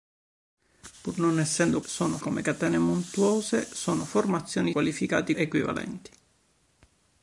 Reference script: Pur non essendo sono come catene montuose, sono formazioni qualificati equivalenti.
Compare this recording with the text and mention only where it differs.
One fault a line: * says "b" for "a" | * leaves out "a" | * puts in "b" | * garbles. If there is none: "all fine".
all fine